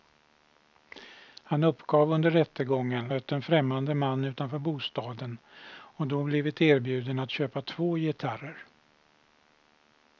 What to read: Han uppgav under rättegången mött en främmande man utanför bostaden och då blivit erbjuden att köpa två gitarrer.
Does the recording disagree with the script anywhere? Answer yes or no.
no